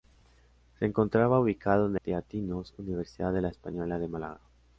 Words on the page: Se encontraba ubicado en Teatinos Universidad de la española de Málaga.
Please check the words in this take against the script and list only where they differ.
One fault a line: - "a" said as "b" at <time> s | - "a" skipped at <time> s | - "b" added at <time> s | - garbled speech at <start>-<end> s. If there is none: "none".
none